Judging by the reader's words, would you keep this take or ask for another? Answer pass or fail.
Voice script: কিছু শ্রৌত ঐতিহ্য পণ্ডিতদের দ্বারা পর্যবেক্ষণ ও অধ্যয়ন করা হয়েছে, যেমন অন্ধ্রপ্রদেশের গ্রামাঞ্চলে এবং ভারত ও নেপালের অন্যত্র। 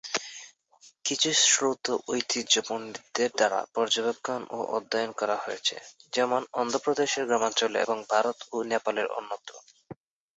pass